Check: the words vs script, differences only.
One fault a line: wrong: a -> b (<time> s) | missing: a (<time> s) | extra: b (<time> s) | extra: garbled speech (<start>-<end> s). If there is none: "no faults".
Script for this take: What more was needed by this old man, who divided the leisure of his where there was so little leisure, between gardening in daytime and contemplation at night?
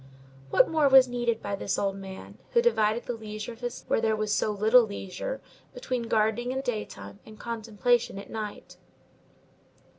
no faults